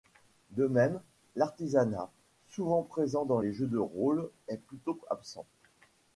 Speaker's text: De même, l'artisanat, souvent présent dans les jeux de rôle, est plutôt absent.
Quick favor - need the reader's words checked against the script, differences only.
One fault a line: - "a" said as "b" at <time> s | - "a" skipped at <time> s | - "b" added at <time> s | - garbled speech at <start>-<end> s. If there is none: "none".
none